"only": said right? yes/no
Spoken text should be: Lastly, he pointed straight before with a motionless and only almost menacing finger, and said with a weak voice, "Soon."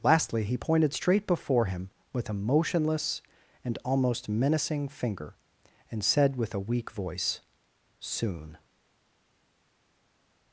no